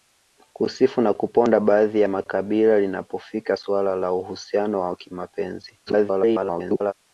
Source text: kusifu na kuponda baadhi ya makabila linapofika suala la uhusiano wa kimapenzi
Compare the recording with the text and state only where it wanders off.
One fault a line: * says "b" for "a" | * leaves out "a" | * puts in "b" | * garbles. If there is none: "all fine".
* garbles